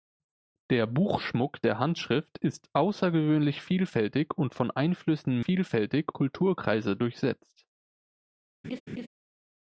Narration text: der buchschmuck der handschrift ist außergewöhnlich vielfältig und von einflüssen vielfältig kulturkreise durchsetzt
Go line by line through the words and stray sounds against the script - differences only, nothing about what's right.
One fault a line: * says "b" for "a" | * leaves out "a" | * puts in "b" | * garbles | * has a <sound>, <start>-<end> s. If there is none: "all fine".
* has a laugh, 8.6-9.1 s